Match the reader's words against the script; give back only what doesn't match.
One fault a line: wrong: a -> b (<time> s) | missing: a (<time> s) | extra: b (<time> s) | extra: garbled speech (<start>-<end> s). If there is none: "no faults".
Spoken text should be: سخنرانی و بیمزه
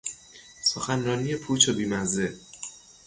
extra: پوچ (1.3 s)